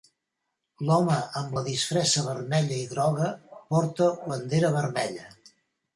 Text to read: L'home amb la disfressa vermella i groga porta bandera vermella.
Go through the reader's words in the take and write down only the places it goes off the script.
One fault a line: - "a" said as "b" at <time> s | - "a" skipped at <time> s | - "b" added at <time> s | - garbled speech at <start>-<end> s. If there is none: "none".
none